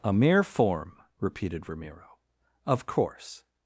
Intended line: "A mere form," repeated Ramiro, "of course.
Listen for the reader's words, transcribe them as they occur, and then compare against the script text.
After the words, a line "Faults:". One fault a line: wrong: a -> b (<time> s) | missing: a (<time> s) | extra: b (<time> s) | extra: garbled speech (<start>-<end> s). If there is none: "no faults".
"A mere form," repeated Ramiro, "of course.
Faults:
no faults